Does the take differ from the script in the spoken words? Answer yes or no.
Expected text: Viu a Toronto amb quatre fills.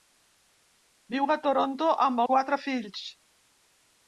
no